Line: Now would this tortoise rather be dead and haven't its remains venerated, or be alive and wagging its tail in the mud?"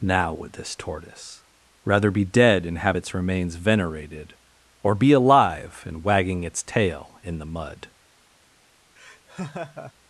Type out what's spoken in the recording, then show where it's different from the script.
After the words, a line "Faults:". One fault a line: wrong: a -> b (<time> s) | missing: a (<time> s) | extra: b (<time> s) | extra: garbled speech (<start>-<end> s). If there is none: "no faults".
Now would this tortoise rather be dead and have its remains venerated, or be alive and wagging its tail in the mud?"
Faults:
wrong: haven't -> have (2.8 s)